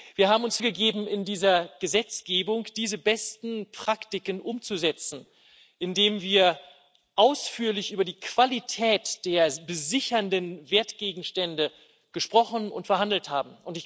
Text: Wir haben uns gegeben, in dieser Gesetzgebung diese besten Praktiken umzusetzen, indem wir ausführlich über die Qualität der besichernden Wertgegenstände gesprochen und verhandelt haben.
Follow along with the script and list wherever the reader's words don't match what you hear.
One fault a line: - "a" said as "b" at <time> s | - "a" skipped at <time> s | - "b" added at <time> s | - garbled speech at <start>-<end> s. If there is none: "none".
none